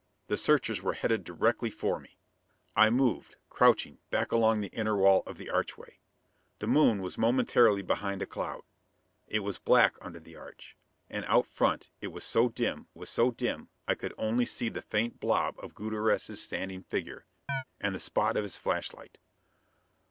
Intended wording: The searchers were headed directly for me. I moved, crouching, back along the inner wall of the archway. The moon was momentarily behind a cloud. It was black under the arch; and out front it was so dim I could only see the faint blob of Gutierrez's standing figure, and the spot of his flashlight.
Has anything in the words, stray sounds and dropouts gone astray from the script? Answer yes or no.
yes